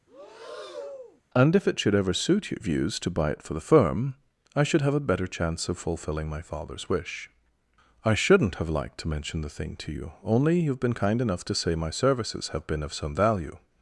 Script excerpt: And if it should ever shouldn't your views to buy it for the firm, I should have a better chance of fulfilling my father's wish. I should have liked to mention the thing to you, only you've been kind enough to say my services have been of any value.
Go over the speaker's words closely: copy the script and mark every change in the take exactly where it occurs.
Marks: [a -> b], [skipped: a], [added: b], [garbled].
And if it should ever [shouldn't -> suit] your views to buy it for the firm, I should have a better chance of fulfilling my father's wish. I [should -> shouldn't] have liked to mention the thing to you, only you've been kind enough to say my services have been of [any -> some] value.